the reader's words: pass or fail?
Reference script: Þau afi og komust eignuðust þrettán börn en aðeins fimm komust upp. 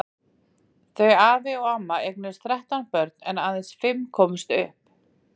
fail